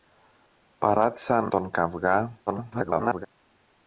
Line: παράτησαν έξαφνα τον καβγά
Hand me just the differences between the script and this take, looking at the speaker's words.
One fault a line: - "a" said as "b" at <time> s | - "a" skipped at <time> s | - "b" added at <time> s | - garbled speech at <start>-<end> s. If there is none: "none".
- "έξαφνα" skipped at 1.5 s
- garbled speech at 2.5-3.3 s